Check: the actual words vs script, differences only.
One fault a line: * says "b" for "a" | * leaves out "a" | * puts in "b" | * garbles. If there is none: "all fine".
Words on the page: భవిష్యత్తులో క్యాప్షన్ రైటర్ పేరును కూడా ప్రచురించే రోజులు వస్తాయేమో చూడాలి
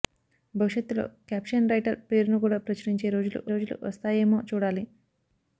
* puts in "రోజులు"